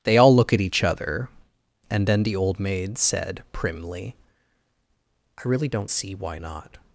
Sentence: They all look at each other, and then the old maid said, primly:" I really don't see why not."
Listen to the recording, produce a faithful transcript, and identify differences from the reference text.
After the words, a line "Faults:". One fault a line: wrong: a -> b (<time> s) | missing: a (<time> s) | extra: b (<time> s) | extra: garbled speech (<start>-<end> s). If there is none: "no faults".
They all look at each other, and then the old maid said, primly:" I really don't see why not."
Faults:
no faults